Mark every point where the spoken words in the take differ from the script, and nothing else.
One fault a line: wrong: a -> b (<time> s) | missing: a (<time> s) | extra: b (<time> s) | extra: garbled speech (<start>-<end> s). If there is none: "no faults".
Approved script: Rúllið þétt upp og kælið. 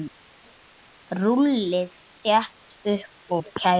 no faults